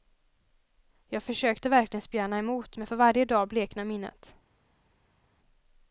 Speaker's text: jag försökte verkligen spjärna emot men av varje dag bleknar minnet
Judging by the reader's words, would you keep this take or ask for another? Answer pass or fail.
fail